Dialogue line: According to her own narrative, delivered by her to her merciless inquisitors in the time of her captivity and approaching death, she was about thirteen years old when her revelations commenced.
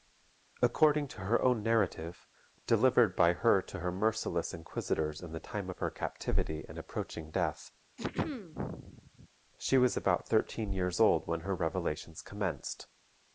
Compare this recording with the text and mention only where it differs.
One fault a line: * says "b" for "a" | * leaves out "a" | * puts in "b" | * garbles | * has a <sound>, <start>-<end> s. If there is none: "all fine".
* has a throat clearing, 8.0-9.3 s